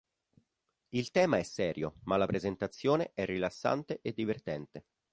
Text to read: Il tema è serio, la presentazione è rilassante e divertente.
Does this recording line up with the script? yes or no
no